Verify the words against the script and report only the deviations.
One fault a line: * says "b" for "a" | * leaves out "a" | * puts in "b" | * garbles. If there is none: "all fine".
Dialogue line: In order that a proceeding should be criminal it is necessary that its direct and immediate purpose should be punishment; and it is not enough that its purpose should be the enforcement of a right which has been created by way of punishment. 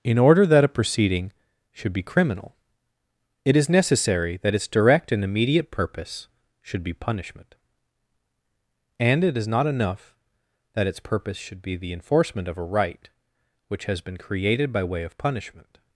all fine